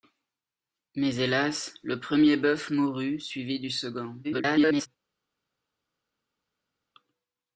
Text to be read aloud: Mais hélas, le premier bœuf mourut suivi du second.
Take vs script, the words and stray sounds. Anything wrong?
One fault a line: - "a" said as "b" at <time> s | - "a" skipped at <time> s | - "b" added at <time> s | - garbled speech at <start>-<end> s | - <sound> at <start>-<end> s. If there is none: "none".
- garbled speech at 4.2-4.9 s